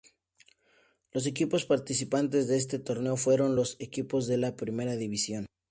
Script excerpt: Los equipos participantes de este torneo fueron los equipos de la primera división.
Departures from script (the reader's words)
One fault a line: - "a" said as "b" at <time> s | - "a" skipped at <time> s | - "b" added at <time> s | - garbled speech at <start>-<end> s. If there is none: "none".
none